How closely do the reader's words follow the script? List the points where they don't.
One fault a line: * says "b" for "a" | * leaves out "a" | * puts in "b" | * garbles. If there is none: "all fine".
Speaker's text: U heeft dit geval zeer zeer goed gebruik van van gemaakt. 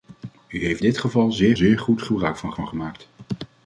all fine